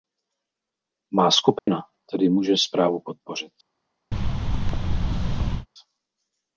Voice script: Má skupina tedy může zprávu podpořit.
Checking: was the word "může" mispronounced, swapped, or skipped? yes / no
no